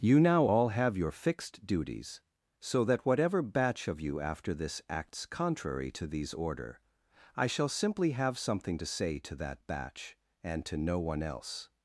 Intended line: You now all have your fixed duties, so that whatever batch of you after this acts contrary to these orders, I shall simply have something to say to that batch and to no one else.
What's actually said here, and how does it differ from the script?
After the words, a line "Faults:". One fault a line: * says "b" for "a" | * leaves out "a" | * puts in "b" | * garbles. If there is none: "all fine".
You now all have your fixed duties, so that whatever batch of you after this acts contrary to these order, I shall simply have something to say to that batch and to no one else.
Faults:
* says "order" for "orders"